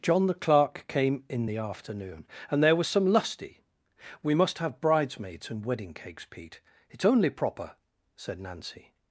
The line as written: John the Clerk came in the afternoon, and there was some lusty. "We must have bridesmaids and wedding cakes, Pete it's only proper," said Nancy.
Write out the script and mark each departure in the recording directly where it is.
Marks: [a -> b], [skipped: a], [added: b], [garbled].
John the Clerk came in the afternoon, and there was some lusty. "We must have bridesmaids and wedding cakes, Pete it's only proper," said Nancy.